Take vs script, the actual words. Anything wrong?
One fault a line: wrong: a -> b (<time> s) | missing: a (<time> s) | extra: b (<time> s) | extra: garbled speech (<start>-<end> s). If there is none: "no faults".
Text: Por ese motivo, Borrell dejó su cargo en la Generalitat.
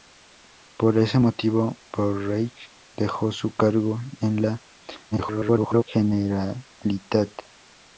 extra: garbled speech (5.1-5.8 s)